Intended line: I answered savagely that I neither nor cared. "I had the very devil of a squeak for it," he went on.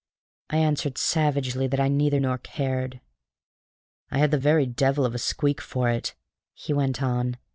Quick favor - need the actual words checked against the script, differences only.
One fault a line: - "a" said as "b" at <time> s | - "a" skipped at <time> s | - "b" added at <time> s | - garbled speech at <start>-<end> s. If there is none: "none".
none